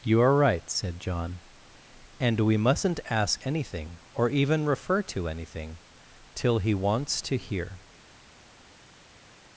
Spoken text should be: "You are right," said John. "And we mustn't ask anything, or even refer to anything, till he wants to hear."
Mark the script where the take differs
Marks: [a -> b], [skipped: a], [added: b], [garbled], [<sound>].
"You are right," said John. "And we mustn't ask anything, or even refer to anything, till he wants to hear."